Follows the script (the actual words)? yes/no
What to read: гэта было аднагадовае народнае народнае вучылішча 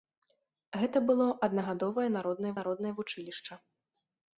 yes